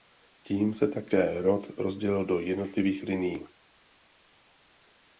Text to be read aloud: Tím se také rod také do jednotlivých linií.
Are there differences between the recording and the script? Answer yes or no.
yes